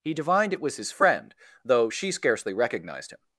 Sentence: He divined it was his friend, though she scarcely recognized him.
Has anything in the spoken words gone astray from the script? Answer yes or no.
no